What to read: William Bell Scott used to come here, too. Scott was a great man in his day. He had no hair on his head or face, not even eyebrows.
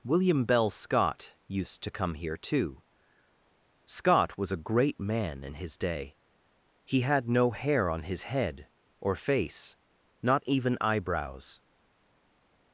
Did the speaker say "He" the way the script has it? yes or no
yes